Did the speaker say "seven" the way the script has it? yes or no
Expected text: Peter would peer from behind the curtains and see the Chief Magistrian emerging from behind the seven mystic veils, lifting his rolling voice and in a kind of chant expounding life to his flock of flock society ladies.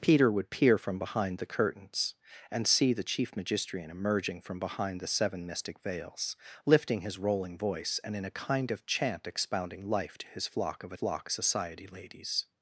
yes